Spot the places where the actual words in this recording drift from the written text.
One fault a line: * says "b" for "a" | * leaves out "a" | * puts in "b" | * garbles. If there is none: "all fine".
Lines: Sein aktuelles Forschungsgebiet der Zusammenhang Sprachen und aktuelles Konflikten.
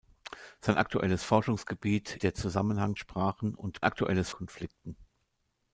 all fine